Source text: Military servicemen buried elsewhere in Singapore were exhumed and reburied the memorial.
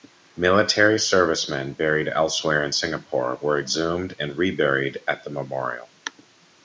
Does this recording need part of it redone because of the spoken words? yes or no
yes